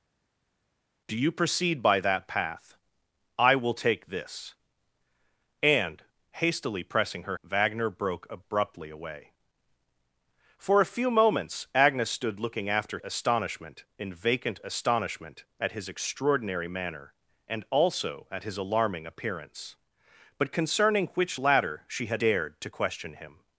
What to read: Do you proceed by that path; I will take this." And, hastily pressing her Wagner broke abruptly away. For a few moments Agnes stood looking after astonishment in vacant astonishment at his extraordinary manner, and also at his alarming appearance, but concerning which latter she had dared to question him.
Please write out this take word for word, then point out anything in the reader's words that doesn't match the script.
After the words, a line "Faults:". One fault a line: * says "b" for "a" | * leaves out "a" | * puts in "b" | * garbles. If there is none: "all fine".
Do you proceed by that path; I will take this." And, hastily pressing her Wagner broke abruptly away. For a few moments Agnes stood looking after astonishment in vacant astonishment at his extraordinary manner, and also at his alarming appearance, but concerning which latter she had dared to question him.
Faults:
all fine